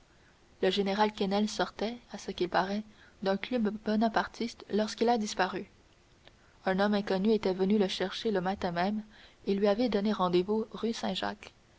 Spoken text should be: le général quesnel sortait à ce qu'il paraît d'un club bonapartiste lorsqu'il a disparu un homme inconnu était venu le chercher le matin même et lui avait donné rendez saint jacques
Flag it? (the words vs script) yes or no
yes